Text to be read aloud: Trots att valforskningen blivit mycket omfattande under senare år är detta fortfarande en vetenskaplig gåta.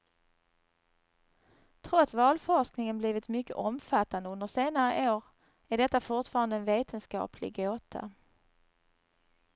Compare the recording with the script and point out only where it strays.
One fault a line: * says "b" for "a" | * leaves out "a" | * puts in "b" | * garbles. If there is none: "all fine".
* leaves out "att"